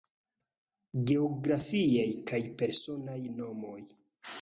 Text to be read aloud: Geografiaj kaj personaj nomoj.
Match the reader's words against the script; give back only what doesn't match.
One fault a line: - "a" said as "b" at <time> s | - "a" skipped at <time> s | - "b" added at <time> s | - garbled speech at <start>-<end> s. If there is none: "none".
none